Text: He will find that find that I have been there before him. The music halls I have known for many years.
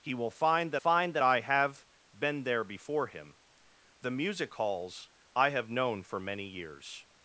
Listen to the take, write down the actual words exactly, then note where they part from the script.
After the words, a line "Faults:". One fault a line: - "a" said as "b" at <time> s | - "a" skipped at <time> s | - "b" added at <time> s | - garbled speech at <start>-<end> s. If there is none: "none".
He will find that find that I have been there before him. The music halls I have known for many years.
Faults:
none